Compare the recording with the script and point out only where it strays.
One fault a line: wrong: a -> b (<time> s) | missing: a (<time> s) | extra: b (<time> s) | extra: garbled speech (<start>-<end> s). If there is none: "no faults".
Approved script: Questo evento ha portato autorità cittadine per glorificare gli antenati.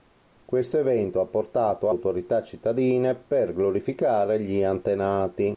no faults